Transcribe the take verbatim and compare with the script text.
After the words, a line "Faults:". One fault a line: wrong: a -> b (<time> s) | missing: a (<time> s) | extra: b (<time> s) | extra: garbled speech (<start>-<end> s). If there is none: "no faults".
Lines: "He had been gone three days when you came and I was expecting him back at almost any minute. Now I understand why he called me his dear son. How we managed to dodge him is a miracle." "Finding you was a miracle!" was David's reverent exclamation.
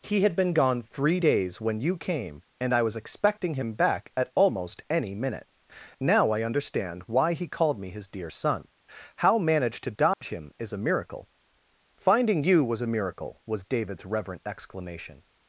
"He had been gone three days when you came and I was expecting him back at almost any minute. Now I understand why he called me his dear son. How managed to dodge him is a miracle." "Finding you was a miracle!" was David's reverent exclamation.
Faults:
missing: we (9.4 s)